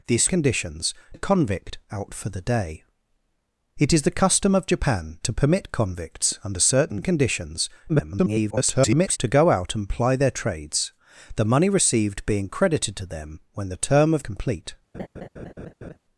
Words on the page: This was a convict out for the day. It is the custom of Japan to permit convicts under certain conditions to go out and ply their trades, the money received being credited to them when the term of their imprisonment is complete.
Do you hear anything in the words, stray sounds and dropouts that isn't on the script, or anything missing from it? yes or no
yes